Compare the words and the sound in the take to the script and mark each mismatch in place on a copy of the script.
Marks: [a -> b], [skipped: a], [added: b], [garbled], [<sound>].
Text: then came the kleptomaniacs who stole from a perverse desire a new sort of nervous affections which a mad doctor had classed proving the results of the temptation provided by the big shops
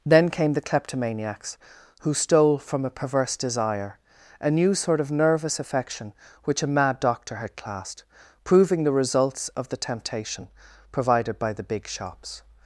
then came the kleptomaniacs who stole from a perverse desire a new sort of nervous [affections -> affection] which a mad doctor had classed proving the results of the temptation provided by the big shops